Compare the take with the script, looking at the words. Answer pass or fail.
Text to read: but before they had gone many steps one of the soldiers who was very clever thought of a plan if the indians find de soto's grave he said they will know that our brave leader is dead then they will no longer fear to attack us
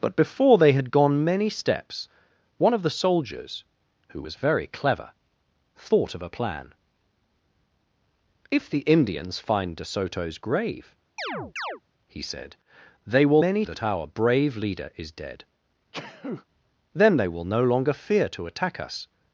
fail